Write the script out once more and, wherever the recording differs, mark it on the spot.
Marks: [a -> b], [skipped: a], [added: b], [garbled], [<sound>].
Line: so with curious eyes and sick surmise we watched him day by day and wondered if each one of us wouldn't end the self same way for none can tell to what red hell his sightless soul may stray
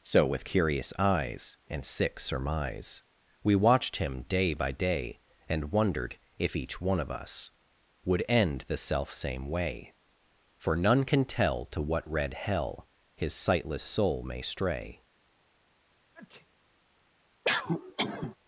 so with curious eyes and sick surmise we watched him day by day and wondered if each one of us [wouldn't -> would] end the self same way for none can tell to what red hell his sightless soul may stray [sneeze] [cough]